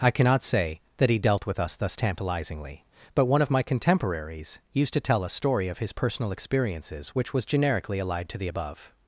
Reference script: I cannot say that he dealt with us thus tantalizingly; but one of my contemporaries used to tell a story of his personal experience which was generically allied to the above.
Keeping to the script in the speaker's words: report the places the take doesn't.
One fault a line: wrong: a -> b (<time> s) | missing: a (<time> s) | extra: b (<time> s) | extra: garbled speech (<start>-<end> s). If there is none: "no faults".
wrong: experience -> experiences (6.3 s)